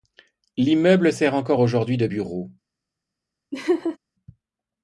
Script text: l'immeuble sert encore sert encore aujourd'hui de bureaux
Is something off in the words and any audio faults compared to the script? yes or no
yes